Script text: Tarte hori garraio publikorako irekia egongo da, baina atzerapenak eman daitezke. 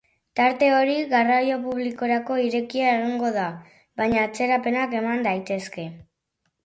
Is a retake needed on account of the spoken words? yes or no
no